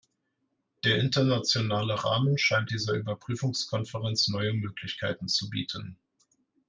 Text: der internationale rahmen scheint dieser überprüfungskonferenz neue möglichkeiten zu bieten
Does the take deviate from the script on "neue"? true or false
false